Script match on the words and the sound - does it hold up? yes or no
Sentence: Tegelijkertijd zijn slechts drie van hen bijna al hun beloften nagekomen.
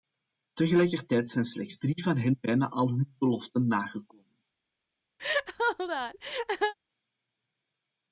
no